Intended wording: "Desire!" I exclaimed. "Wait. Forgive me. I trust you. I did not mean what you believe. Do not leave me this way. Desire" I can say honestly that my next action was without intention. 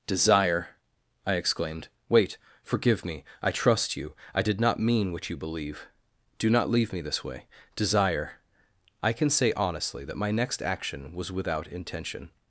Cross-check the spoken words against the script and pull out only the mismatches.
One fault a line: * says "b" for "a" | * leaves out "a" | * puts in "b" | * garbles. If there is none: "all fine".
all fine